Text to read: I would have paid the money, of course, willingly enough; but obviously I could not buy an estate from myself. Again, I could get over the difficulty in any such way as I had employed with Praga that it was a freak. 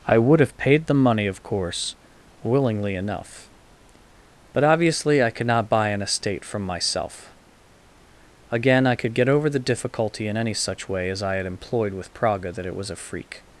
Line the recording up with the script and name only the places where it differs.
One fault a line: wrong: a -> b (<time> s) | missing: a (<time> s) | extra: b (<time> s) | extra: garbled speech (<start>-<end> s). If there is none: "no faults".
no faults